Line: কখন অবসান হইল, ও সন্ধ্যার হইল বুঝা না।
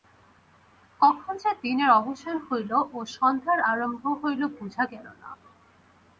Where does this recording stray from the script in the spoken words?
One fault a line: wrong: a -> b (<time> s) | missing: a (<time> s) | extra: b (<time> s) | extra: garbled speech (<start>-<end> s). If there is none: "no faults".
extra: যে দিনের (1.4 s)
extra: আরম্ভ (3.7 s)
extra: গেল (4.9 s)